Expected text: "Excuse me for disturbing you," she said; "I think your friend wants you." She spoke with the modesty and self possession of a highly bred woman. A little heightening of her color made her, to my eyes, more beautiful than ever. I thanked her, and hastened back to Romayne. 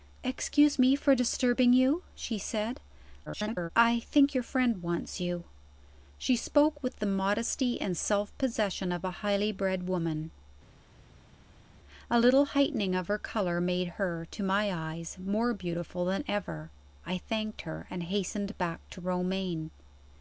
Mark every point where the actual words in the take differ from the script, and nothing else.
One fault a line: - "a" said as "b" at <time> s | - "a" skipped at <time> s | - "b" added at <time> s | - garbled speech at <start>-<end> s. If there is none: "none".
- garbled speech at 3.3-3.7 s